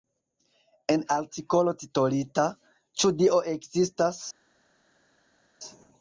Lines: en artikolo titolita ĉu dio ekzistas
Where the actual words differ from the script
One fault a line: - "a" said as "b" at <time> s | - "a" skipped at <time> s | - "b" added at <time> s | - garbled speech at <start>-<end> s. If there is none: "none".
none